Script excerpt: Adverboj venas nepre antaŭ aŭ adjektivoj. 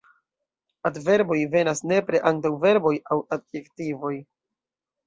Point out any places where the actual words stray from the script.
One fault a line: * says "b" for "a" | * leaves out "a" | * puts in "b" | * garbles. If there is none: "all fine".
* puts in "verboj"